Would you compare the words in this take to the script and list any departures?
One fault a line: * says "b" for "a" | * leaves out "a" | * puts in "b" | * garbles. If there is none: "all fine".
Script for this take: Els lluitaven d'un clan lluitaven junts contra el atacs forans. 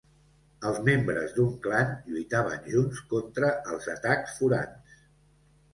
* says "membres" for "lluitaven"
* says "els" for "el"